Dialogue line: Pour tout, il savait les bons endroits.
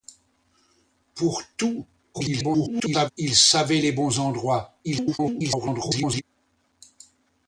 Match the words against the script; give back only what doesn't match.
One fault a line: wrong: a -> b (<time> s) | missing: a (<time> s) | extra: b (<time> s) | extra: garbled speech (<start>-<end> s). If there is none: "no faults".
extra: garbled speech (2.1-3.1 s)
extra: garbled speech (4.8-6.2 s)